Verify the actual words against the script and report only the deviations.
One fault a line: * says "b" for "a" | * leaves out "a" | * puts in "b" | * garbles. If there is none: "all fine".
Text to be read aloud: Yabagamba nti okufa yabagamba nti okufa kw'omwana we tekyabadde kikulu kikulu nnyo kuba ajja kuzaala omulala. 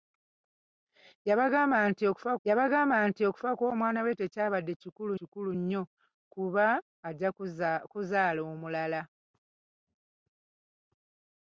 all fine